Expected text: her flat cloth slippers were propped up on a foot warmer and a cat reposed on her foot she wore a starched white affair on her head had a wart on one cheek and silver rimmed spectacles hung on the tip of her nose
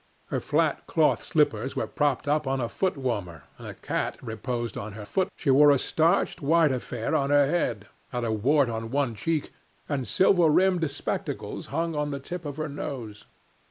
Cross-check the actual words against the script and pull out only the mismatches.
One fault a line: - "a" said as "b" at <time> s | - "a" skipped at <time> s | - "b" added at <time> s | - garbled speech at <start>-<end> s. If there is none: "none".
none